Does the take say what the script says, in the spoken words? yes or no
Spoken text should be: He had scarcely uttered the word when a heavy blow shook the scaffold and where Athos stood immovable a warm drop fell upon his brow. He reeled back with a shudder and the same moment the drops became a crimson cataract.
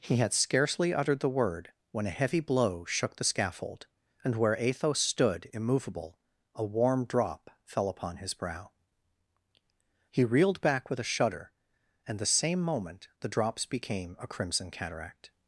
yes